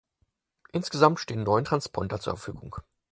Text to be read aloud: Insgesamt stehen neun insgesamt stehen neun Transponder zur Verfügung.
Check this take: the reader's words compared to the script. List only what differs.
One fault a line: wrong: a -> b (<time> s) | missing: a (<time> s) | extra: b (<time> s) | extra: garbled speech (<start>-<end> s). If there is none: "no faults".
missing: insgesamt stehen neun (1.6 s)